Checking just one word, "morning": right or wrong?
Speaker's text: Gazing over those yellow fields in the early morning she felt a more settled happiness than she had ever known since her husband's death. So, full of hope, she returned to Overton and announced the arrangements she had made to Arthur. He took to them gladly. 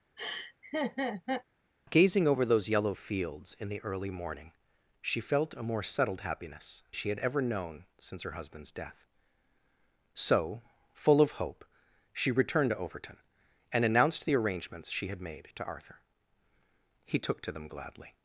right